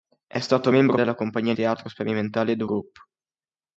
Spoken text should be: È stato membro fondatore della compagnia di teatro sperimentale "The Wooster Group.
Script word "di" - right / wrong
wrong